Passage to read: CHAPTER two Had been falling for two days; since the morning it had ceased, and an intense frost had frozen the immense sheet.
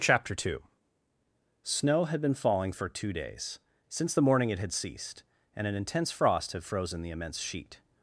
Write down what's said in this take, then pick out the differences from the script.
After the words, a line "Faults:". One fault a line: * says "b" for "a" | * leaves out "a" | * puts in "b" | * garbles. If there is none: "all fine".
CHAPTER two Snow had been falling for two days; since the morning it had ceased, and an intense frost had frozen the immense sheet.
Faults:
* puts in "Snow"